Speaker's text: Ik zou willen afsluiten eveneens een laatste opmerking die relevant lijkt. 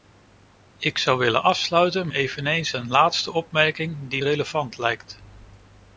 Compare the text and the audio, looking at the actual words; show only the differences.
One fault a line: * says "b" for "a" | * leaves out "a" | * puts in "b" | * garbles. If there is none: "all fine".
all fine